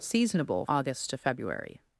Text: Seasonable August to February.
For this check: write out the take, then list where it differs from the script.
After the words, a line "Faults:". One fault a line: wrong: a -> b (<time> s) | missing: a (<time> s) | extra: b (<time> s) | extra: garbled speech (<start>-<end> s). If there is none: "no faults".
Seasonable August to February.
Faults:
no faults